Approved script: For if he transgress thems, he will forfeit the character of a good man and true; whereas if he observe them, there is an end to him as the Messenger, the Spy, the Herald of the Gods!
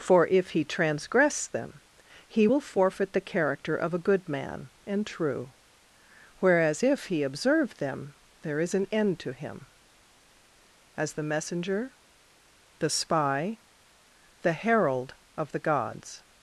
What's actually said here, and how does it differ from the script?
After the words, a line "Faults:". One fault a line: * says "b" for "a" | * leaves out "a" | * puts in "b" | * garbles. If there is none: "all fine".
For if he transgress them, he will forfeit the character of a good man and true; whereas if he observe them, there is an end to him as the Messenger, the Spy, the Herald of the Gods!
Faults:
* says "them" for "thems"